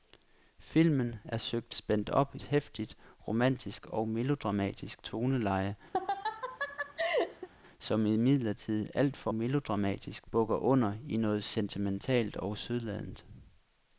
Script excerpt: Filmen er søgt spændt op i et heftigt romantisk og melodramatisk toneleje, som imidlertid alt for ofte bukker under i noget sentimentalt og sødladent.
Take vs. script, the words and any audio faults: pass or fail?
fail